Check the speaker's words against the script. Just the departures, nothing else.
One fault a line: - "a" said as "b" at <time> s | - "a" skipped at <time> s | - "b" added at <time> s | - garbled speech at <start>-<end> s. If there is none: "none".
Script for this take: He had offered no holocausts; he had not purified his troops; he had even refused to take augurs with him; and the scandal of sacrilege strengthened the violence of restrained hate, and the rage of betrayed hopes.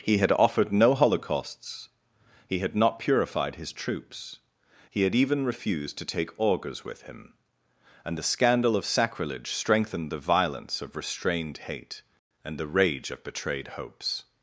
none